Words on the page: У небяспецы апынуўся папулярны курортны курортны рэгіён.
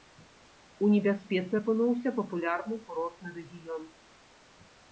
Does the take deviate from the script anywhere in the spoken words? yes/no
yes